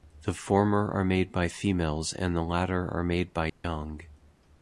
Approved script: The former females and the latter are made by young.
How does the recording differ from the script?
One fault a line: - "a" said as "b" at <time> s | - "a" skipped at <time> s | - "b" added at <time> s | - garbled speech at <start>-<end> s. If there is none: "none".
- "are made by" added at 0.9 s